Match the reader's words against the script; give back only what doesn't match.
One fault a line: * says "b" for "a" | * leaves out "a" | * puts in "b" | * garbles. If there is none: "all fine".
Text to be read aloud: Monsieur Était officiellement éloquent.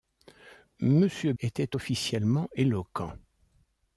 all fine